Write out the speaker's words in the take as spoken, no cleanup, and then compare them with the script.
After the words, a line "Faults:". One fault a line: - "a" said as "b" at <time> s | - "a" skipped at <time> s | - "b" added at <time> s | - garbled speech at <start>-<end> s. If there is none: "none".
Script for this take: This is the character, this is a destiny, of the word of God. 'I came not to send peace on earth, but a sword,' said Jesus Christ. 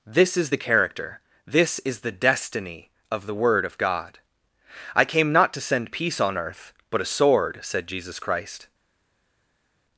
This is the character, this is the destiny, of the word of God. 'I came not to send peace on earth, but a sword,' said Jesus Christ.
Faults:
- "a" said as "the" at 2.0 s